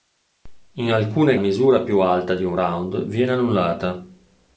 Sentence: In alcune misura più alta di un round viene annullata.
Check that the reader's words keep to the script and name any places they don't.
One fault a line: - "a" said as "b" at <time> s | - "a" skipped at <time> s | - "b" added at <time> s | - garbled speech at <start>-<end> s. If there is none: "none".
none